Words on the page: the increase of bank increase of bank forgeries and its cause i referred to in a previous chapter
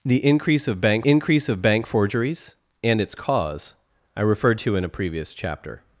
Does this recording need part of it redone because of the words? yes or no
no